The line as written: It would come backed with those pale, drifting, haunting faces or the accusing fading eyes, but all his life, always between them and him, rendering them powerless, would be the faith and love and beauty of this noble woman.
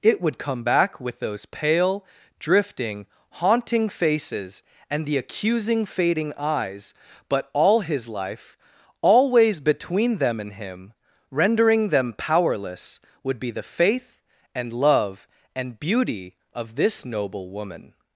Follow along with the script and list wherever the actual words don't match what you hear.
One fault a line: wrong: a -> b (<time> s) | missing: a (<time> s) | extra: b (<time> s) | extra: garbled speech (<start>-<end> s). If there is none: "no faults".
wrong: backed -> back (0.6 s)
wrong: or -> and (4.9 s)